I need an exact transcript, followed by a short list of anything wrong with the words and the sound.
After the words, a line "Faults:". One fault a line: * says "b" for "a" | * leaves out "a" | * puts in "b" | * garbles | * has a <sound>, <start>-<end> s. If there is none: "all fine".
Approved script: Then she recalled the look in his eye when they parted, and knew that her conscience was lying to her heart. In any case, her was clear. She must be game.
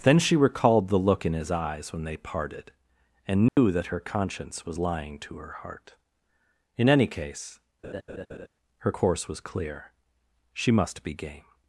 Then she recalled the look in his eyes when they parted, and knew that her conscience was lying to her heart. In any case, her course was clear. She must be game.
Faults:
* says "eyes" for "eye"
* has a dropout, 3.5-3.6 s
* has a laugh, 7.8-8.5 s
* puts in "course"